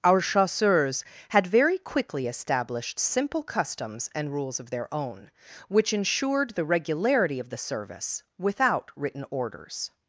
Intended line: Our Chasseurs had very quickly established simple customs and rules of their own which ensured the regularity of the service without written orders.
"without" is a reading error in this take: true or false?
false